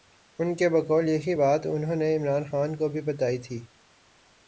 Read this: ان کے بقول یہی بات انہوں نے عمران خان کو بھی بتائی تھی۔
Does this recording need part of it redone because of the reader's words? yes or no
no